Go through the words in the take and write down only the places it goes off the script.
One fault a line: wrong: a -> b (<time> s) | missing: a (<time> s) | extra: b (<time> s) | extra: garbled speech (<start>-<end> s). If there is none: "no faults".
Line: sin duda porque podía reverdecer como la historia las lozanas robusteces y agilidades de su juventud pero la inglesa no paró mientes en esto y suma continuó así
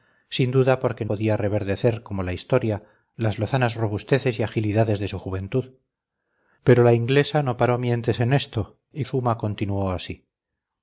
no faults